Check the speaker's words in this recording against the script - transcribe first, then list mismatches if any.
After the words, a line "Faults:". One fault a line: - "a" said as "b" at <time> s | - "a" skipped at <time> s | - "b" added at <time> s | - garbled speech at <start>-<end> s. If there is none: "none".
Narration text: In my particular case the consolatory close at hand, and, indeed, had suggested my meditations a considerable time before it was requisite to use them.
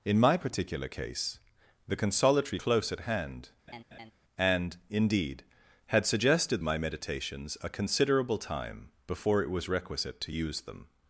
In my particular case the consolatory close at hand, and, indeed, had suggested my meditations a considerable time before it was requisite to use them.
Faults:
none